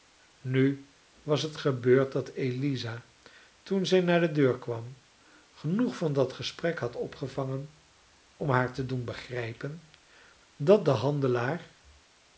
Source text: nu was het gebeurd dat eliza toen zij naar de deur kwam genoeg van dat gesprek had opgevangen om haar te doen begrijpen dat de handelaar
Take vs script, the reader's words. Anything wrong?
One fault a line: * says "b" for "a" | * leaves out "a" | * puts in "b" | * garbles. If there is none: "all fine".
all fine